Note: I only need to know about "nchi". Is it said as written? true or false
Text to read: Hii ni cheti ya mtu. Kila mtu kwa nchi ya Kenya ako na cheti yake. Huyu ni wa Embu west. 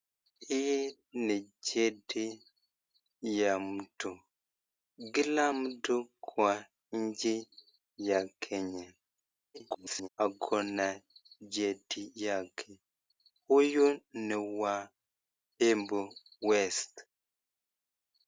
true